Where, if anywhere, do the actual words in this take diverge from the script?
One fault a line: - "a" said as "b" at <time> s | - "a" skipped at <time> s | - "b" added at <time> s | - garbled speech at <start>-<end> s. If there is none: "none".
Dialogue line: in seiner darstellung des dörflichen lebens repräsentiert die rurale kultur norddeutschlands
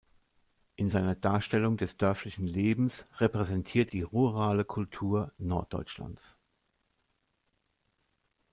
none